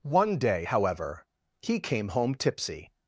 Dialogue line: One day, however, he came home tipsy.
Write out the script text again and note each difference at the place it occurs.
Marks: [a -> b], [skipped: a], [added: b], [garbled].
One day, however, he came home tipsy.